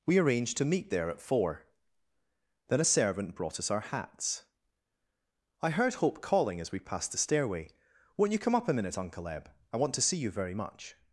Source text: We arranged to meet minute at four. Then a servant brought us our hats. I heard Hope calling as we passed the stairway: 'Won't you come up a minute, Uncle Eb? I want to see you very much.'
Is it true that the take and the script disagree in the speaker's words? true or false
true